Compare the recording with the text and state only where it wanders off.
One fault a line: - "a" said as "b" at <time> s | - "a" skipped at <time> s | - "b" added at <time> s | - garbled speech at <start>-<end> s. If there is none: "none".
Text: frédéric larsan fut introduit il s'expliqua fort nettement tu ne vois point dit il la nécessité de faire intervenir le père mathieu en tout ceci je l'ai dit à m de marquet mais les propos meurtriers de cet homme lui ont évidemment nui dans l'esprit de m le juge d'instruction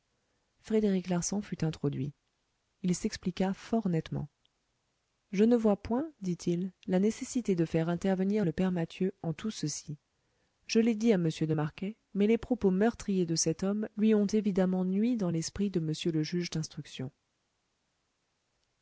- "tu" said as "je" at 5.3 s